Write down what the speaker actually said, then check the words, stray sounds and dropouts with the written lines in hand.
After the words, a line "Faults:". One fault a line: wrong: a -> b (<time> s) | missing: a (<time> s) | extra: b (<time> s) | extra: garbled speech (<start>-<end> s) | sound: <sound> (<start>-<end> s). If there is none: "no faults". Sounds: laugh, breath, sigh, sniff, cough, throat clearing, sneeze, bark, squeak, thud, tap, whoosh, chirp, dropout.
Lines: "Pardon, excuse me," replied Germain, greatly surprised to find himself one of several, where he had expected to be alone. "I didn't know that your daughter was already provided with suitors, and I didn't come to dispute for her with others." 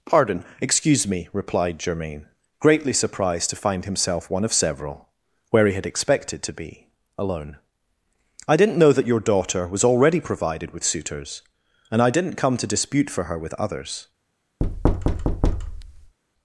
"Pardon, excuse me," replied Germain, greatly surprised to find himself one of several, where he had expected to be alone. "I didn't know that your daughter was already provided with suitors, and I didn't come to dispute for her with others."
Faults:
sound: thud (14.6-16.2 s)